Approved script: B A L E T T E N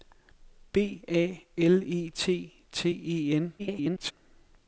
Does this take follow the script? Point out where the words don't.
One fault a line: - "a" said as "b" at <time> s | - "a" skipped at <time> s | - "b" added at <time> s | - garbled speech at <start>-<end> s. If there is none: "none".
- garbled speech at 3.6-4.1 s